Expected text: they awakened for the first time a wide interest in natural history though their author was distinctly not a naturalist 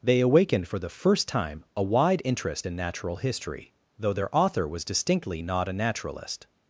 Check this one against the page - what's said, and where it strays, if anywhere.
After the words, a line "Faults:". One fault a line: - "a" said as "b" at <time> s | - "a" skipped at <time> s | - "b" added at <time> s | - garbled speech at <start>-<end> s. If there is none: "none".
they awakened for the first time a wide interest in natural history though their author was distinctly not a naturalist
Faults:
none